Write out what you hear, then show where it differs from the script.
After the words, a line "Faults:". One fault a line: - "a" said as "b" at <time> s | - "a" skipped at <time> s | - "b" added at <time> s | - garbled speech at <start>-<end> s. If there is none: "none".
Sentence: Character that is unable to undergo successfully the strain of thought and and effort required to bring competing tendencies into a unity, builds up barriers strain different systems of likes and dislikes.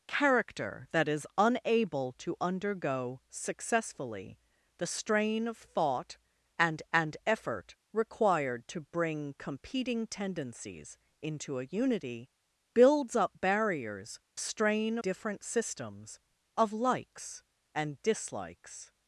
Character that is unable to undergo successfully the strain of thought and and effort required to bring competing tendencies into a unity, builds up barriers strain different systems of likes and dislikes.
Faults:
none